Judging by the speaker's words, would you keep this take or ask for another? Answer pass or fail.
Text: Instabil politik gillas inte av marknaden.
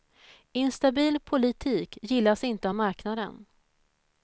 pass